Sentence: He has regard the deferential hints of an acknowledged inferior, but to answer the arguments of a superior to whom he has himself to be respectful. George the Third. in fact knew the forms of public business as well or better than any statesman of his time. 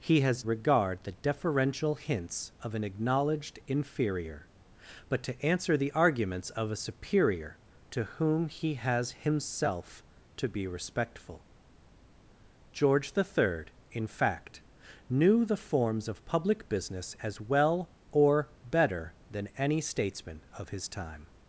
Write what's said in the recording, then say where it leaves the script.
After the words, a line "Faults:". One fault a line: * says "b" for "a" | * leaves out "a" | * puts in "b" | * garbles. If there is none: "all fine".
He has regard the deferential hints of an acknowledged inferior, but to answer the arguments of a superior to whom he has himself to be respectful. George the Third. in fact knew the forms of public business as well or better than any statesman of his time.
Faults:
all fine